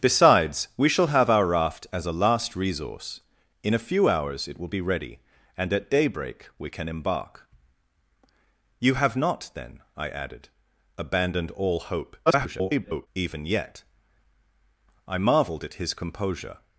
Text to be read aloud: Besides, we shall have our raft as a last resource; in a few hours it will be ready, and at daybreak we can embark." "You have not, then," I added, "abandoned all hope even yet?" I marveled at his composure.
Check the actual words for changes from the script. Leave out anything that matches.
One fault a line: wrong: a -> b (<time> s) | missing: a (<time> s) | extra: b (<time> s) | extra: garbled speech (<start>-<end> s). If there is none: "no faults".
extra: garbled speech (12.3-13.1 s)